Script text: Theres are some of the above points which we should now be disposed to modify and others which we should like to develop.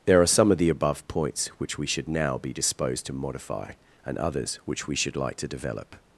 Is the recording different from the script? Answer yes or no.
yes